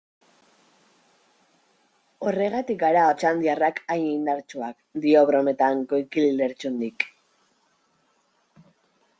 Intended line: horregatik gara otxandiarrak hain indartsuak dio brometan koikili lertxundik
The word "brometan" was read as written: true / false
true